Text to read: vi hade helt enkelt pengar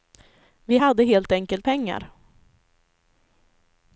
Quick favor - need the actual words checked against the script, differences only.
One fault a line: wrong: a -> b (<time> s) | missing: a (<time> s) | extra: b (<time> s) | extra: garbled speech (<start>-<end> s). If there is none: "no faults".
no faults